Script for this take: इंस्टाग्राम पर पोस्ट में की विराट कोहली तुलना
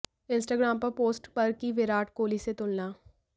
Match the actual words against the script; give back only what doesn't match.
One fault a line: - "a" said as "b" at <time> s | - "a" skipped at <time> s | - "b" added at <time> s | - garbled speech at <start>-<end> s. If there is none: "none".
- "में" said as "पर" at 1.3 s
- "से" added at 2.4 s